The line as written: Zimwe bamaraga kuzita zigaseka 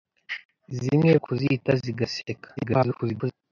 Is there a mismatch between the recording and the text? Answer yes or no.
yes